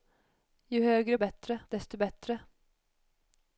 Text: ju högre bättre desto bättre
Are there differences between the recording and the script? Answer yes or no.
no